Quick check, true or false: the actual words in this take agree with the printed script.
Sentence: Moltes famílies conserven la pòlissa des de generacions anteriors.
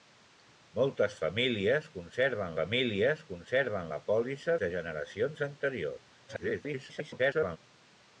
false